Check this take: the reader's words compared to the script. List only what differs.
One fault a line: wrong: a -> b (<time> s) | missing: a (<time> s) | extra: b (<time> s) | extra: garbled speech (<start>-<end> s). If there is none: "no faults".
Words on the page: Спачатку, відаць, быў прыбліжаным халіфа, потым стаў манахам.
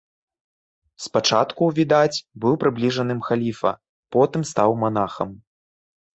no faults